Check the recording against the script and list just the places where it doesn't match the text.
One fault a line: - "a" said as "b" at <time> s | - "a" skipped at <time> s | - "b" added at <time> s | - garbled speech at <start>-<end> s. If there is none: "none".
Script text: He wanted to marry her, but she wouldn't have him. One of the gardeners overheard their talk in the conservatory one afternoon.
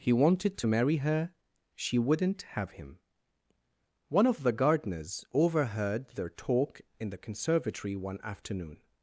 - "but" skipped at 1.3 s